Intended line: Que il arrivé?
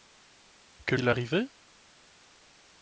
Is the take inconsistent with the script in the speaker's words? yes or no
no